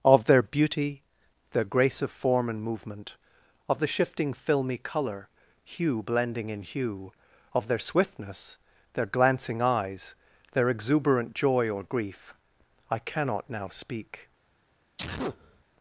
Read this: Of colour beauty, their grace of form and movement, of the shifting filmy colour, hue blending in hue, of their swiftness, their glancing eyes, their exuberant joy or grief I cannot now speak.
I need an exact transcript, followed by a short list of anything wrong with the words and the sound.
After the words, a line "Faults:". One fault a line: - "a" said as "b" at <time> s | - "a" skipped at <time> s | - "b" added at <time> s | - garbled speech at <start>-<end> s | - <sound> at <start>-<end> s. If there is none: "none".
Of their beauty, their grace of form and movement, of the shifting filmy colour, hue blending in hue, of their swiftness, their glancing eyes, their exuberant joy or grief I cannot now speak.
Faults:
- "colour" said as "their" at 0.2 s
- sneeze at 15.0-15.6 s